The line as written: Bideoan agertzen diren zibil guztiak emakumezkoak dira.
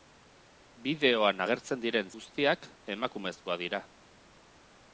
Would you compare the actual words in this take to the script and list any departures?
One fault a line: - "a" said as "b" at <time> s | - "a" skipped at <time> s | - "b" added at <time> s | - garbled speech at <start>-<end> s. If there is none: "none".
- "zibil" skipped at 2.1 s